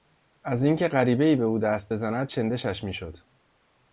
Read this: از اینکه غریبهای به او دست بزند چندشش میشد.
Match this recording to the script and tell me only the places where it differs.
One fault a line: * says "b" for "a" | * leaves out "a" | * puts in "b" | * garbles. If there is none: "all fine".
all fine